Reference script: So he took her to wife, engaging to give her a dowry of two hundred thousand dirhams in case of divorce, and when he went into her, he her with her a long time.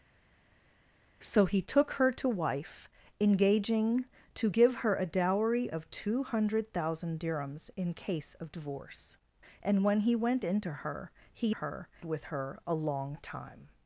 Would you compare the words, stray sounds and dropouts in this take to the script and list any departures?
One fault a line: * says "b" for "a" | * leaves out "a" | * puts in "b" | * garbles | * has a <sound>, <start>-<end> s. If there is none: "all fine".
all fine